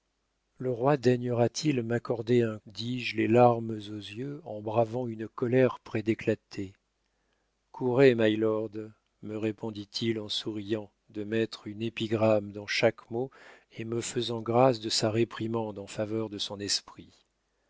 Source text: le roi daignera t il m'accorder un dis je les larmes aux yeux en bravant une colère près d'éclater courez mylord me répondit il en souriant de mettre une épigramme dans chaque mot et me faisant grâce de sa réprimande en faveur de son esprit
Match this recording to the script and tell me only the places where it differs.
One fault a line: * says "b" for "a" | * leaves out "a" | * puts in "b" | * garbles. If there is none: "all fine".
all fine